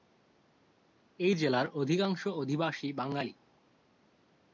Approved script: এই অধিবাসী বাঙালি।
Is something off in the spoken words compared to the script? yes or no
yes